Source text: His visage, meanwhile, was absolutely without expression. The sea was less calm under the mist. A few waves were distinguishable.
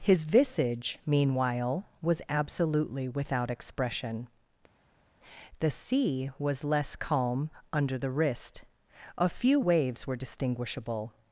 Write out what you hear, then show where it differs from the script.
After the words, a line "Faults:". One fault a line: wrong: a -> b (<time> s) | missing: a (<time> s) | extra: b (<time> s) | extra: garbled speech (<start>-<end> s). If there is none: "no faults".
His visage, meanwhile, was absolutely without expression. The sea was less calm under the wrist. A few waves were distinguishable.
Faults:
wrong: mist -> wrist (8.1 s)